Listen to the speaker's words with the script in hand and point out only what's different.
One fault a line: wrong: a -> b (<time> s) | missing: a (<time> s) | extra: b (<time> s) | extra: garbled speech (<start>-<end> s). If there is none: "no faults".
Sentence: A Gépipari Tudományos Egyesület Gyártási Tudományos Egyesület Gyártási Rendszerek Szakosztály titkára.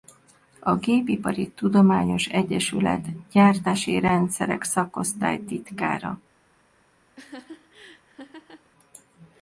missing: Tudományos Egyesület Gyártási (4.0 s)